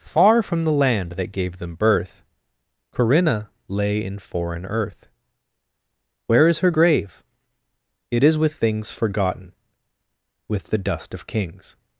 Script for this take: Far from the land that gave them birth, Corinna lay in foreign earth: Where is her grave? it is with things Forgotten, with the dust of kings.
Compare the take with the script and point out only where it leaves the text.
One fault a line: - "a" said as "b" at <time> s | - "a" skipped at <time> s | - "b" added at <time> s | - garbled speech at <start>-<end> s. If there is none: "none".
none